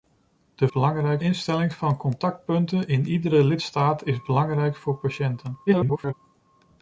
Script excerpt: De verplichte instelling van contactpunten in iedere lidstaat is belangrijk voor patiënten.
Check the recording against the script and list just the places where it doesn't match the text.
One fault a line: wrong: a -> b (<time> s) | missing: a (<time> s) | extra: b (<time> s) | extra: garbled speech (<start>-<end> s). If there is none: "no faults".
wrong: verplichte -> belangrijk (0.7 s)
extra: garbled speech (5.7-6.1 s)